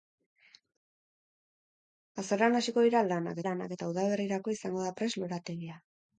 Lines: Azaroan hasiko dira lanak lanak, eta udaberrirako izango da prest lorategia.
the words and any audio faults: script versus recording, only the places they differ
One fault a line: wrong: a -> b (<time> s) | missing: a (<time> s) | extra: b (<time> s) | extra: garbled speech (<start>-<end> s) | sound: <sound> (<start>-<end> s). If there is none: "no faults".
no faults